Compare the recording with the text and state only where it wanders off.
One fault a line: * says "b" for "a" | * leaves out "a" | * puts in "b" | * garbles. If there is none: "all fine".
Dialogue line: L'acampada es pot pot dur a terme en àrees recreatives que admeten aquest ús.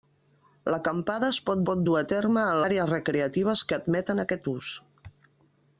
all fine